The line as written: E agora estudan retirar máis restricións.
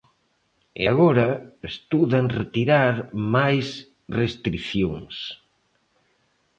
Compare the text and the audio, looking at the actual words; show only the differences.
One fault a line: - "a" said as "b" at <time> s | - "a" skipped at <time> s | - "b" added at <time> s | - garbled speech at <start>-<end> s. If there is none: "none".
none